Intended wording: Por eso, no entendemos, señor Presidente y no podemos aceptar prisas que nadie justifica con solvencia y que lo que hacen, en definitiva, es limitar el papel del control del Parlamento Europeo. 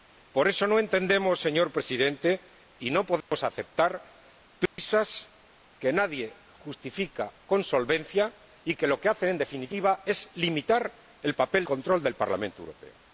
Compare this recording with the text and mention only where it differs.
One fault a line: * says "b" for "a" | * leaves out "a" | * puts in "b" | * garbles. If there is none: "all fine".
* leaves out "del"